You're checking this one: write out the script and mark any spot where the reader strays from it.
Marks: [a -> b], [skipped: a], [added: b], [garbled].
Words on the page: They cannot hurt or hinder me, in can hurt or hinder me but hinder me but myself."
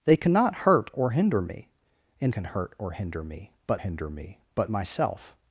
They cannot hurt or hinder me, in can hurt or hinder me but hinder me but myself."